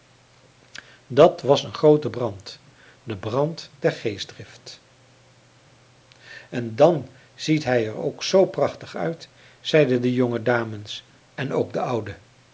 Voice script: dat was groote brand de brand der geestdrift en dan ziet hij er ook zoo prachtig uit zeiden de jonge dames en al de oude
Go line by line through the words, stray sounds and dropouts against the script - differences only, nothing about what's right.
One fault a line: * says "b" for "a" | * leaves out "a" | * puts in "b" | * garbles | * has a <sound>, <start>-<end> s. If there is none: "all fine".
* puts in "een"
* says "ook" for "al"